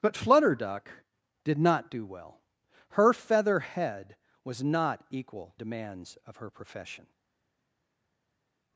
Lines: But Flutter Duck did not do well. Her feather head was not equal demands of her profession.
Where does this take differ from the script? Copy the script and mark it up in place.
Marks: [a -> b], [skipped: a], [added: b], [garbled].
But Flutter Duck did not do well. Her feather head was not equal demands of her profession.